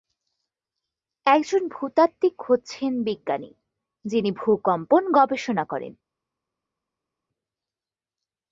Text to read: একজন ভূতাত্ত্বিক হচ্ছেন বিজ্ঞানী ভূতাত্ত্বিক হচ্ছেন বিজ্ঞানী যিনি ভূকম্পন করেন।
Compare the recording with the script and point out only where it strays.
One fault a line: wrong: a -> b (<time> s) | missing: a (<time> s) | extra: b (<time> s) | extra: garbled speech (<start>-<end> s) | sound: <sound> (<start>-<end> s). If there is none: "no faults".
missing: ভূতাত্ত্বিক হচ্ছেন বিজ্ঞানী (3.5 s)
extra: গবেষণা (5.1 s)